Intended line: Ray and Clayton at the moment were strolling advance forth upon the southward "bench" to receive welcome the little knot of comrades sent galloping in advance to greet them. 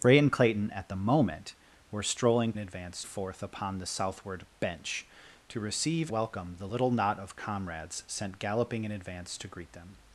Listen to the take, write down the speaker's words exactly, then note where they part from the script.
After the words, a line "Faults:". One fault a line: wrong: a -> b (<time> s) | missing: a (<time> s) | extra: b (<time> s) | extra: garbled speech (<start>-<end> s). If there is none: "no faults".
Ray and Clayton at the moment were strolling advance forth upon the southward "bench" to receive welcome the little knot of comrades sent galloping in advance to greet them.
Faults:
no faults